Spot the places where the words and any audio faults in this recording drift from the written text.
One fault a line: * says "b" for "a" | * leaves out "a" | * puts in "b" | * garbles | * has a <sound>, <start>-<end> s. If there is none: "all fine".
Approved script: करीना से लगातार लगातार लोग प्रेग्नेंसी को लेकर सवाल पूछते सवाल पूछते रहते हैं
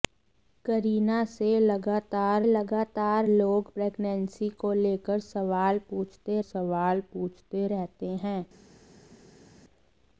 all fine